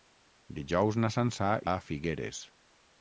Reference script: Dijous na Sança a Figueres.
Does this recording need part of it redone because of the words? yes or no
no